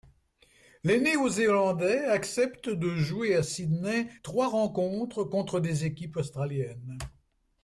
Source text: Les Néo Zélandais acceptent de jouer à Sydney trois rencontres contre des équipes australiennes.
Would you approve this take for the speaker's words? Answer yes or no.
yes